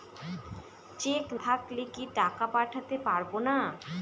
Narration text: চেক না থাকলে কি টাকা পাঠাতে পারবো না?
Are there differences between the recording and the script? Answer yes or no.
yes